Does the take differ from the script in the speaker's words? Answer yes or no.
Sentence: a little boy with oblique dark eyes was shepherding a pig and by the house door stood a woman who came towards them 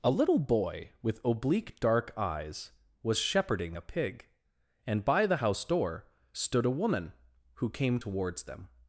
no